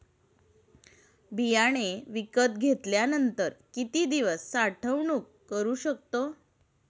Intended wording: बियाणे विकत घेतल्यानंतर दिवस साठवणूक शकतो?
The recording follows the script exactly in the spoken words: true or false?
false